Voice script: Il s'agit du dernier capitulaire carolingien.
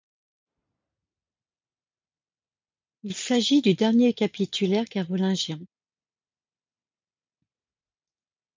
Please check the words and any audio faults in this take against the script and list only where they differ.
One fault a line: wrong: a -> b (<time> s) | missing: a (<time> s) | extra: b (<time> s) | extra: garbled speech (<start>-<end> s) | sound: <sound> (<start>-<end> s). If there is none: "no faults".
no faults